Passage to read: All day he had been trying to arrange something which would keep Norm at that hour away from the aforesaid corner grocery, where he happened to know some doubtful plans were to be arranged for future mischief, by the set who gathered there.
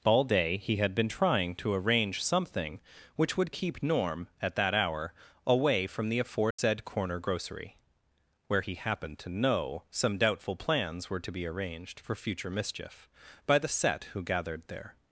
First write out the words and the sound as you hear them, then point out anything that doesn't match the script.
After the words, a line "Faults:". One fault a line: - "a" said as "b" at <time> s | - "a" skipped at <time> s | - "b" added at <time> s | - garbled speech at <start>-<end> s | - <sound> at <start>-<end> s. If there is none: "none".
All day he had been trying to arrange something which would keep Norm at that hour away from the aforesaid corner grocery, where he happened to know some doubtful plans were to be arranged for future mischief, by the set who gathered there.
Faults:
- dropout at 6.5-6.6 s